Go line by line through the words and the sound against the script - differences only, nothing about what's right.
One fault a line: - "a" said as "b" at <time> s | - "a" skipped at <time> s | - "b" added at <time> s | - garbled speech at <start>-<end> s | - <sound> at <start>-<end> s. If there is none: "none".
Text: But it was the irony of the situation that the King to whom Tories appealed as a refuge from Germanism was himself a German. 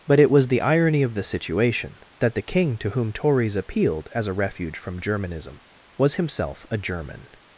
none